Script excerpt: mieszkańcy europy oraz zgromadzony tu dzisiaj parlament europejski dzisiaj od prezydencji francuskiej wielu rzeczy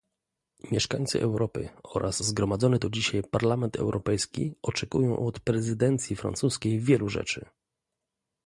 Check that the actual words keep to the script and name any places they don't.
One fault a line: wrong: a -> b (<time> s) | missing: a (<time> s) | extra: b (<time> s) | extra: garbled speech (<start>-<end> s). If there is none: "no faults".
wrong: dzisiaj -> oczekują (4.6 s)